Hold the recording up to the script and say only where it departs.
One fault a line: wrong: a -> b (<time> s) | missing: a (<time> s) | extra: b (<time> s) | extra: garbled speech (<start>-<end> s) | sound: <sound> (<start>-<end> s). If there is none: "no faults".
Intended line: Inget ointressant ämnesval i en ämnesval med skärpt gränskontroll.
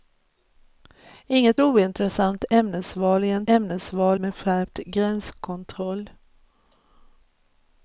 no faults